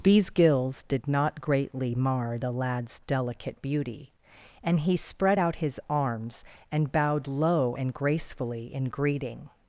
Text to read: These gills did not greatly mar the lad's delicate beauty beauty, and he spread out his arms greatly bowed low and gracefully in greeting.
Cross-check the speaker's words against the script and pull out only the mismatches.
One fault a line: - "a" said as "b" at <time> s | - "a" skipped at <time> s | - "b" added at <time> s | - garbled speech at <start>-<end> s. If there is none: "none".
- "beauty" skipped at 4.1 s
- "greatly" said as "and" at 6.7 s